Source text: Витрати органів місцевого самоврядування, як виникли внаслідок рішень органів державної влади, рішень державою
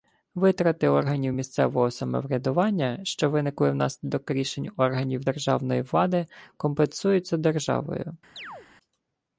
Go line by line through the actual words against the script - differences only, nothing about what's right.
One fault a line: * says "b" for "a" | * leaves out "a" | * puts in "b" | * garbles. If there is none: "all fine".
* says "що" for "як"
* says "компенсуються" for "рішень"